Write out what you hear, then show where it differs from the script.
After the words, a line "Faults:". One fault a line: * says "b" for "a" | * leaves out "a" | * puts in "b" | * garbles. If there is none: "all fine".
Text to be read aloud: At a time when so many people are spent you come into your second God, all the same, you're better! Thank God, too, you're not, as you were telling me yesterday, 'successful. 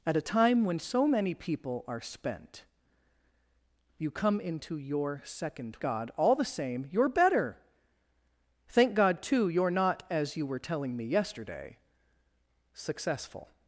At a time when so many people are spent you come into your second God, all the same, you're better! Thank God, too, you're not, as you were telling me yesterday, 'successful.
Faults:
all fine